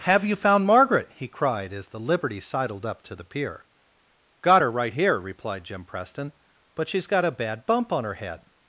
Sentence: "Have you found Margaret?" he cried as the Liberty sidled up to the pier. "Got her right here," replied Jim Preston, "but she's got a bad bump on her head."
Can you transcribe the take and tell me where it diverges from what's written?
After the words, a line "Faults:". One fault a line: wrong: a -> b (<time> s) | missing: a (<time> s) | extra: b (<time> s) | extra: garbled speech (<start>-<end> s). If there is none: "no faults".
"Have you found Margaret?" he cried as the Liberty sidled up to the pier. "Got her right here," replied Jim Preston, "but she's got a bad bump on her head."
Faults:
no faults